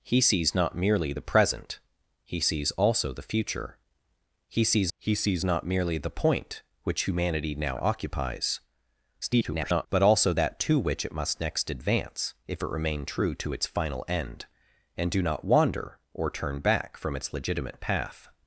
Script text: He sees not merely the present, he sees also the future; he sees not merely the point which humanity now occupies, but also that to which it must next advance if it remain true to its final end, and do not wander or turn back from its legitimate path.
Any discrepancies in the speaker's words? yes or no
yes